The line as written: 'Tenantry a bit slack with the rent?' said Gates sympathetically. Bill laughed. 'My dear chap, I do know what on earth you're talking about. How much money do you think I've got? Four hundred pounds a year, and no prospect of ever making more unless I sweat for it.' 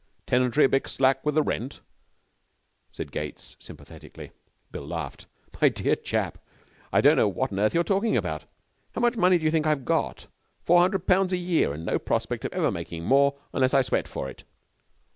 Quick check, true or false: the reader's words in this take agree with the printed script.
false